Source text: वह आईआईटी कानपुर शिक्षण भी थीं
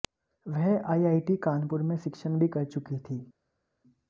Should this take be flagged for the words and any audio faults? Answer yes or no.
yes